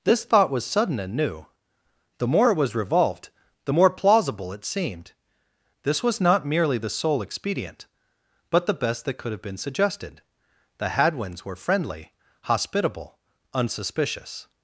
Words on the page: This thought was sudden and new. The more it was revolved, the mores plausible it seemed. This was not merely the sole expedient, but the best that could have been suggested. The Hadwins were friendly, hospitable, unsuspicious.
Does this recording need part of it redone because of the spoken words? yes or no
yes